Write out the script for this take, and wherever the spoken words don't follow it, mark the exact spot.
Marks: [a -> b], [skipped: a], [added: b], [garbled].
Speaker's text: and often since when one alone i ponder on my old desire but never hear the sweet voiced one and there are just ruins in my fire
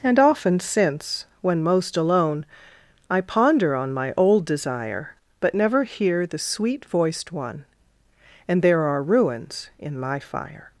and often since when [one -> most] alone i ponder on my old desire but never hear the sweet voiced one and there are [skipped: just] ruins in my fire